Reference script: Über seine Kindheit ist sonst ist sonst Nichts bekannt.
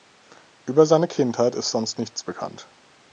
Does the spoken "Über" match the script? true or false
true